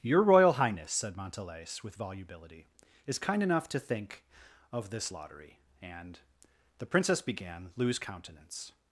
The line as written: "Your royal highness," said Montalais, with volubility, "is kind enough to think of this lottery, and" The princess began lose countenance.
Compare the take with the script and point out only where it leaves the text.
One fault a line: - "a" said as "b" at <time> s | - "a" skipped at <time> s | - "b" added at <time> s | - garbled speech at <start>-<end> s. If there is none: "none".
none